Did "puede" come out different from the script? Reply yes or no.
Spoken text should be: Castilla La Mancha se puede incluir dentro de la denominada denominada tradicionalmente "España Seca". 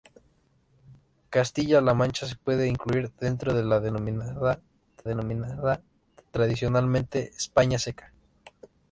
no